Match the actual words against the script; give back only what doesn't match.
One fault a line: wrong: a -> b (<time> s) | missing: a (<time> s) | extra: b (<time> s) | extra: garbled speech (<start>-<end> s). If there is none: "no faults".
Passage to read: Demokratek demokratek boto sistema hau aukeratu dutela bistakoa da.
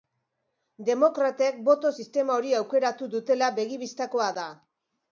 missing: demokratek (1.6 s)
wrong: hau -> hori (2.4 s)
extra: begi (3.6 s)